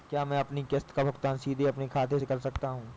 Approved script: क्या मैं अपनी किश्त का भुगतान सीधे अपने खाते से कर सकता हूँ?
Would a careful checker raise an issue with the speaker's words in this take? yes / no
no